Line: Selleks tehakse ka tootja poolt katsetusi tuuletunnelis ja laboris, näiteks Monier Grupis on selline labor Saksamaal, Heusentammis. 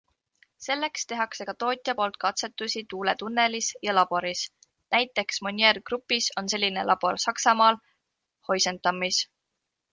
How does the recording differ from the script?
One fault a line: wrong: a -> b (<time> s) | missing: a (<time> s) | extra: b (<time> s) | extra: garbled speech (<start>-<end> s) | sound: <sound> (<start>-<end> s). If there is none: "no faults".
no faults